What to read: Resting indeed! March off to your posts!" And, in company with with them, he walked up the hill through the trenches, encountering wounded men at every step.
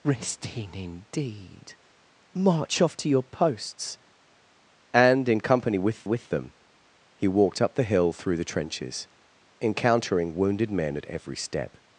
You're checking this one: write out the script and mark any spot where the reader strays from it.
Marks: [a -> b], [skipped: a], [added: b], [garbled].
Resting indeed! March off to your posts!" And, in company with with them, he walked up the hill through the trenches, encountering wounded men at every step.